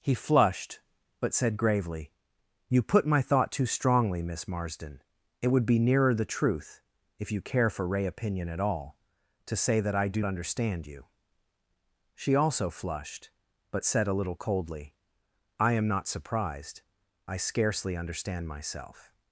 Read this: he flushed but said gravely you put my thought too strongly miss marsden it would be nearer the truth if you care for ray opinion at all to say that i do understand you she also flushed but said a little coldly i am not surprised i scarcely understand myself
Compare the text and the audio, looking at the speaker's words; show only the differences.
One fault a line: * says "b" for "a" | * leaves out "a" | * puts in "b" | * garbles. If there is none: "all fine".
all fine